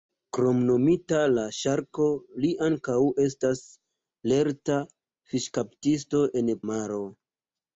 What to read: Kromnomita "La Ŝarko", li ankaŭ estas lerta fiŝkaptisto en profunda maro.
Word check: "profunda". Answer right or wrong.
wrong